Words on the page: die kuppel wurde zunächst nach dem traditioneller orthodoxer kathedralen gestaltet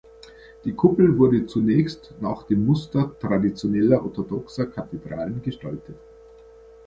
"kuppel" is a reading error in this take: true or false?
false